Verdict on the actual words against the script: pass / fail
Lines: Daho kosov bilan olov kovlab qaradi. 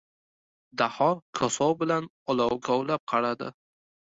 pass